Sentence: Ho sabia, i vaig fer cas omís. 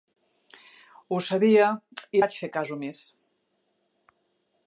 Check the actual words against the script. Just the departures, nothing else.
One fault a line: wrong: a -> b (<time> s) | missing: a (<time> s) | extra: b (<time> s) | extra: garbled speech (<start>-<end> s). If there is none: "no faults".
no faults